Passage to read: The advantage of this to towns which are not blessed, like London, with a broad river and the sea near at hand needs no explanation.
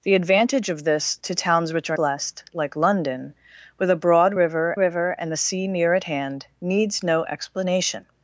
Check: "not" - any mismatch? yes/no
yes